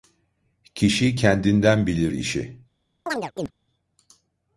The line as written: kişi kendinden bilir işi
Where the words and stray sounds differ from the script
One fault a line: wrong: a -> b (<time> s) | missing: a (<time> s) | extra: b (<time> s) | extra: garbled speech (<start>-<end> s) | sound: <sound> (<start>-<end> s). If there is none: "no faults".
sound: chirp (3.1-3.5 s)